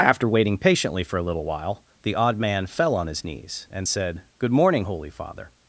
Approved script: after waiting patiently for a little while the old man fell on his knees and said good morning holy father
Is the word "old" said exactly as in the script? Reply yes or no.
no